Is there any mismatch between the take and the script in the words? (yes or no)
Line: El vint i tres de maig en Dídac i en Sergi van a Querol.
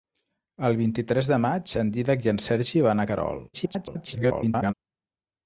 yes